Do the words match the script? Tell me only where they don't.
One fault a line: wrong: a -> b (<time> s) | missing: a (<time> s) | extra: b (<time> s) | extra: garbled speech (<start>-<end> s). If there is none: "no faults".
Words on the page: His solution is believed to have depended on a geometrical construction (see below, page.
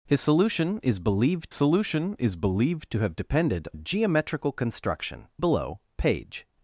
extra: solution is believed (1.5 s)
missing: on (3.7 s)
missing: see (5.3 s)